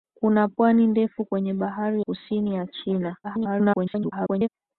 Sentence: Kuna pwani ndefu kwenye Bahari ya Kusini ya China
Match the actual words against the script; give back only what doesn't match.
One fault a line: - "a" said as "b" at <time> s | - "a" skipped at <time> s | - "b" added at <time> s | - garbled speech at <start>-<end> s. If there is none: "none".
- "ya" skipped at 2.0 s
- garbled speech at 3.2-4.5 s